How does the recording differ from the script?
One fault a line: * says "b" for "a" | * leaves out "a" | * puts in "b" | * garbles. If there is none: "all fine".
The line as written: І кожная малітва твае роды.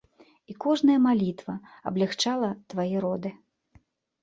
* puts in "аблягчала"